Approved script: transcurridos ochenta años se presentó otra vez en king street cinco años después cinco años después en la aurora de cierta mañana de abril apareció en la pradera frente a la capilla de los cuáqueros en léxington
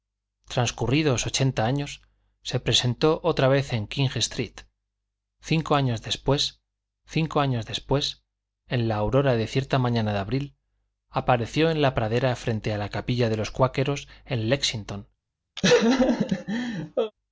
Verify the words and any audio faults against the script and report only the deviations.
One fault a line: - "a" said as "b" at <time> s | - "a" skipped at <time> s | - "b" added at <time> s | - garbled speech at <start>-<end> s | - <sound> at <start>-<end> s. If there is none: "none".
- laugh at 15.6-17.1 s